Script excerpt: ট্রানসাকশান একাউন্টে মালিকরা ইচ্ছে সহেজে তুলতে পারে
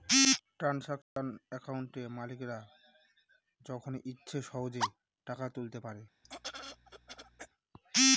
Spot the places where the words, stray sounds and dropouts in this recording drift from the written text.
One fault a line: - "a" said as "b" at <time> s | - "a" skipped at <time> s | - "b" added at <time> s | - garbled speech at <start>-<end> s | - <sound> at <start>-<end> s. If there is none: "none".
- dropout at 1.0-1.2 s
- "যখন" added at 3.6 s
- "টাকা" added at 5.3 s
- throat clearing at 6.2-7.5 s